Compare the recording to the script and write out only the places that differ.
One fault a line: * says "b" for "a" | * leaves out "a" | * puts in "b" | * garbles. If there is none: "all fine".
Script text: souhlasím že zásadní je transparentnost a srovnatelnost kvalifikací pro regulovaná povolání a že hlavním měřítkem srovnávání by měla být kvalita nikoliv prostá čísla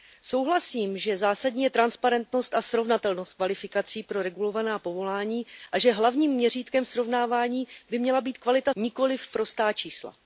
all fine